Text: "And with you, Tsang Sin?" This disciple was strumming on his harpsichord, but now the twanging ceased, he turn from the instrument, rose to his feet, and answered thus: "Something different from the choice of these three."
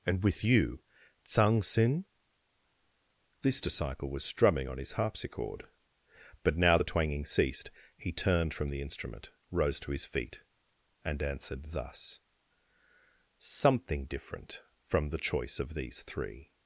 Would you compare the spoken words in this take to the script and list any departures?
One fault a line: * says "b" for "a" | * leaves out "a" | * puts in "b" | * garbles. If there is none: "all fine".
* says "turned" for "turn"